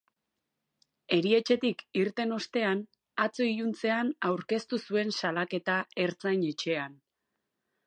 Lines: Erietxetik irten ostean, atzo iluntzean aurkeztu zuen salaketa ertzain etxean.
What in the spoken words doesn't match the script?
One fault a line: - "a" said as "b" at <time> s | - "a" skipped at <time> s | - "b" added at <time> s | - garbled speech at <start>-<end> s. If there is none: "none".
none